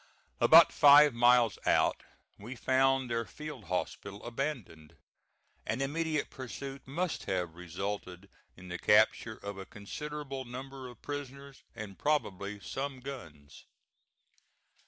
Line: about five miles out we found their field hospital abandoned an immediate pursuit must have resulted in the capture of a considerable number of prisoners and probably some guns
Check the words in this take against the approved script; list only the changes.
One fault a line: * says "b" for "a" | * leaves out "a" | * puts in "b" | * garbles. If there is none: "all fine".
all fine